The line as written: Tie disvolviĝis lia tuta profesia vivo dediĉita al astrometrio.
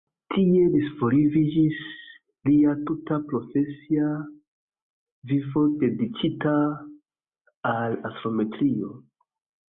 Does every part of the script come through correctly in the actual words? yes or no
yes